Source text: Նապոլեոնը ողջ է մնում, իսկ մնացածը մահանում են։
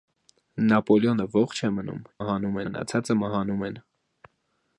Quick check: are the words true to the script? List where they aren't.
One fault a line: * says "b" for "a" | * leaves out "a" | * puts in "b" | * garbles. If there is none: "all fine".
* says "մահանում" for "իսկ"